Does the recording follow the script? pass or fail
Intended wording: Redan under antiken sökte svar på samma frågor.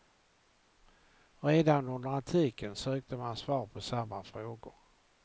fail